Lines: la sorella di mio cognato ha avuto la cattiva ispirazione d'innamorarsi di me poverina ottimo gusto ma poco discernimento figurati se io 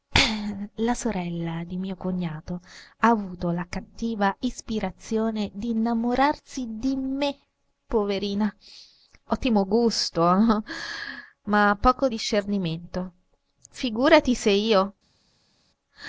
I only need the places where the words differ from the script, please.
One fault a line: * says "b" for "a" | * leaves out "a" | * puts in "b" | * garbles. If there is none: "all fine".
all fine